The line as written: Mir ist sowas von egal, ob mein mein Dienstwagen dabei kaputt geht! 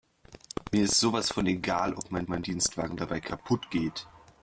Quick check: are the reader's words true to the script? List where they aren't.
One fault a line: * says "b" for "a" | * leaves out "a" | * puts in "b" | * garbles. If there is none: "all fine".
all fine